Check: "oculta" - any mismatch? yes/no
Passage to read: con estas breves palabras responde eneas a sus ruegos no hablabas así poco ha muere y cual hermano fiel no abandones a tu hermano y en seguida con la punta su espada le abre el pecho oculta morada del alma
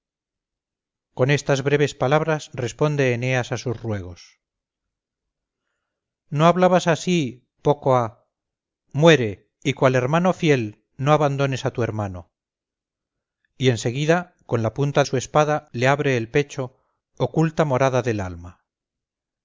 no